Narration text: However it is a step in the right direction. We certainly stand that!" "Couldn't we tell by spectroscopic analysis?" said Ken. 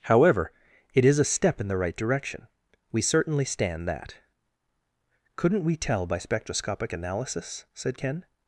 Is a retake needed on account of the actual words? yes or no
no